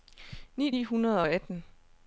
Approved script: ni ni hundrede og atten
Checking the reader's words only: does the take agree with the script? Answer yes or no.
yes